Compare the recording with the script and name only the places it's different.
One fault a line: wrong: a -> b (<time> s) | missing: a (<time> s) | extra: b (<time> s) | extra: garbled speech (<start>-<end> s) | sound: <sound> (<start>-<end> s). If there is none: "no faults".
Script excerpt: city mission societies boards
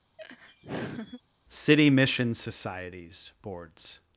sound: laugh (0.2-1.2 s)